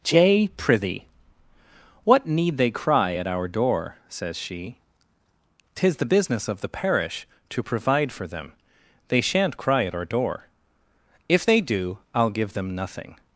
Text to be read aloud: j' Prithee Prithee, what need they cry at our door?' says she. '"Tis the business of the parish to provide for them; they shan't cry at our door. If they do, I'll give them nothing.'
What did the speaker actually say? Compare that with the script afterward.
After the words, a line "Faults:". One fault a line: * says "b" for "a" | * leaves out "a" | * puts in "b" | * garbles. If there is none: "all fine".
j' Prithee, what need they cry at our door?' says she. '"Tis the business of the parish to provide for them; they shan't cry at our door. If they do, I'll give them nothing.'
Faults:
* leaves out "Prithee"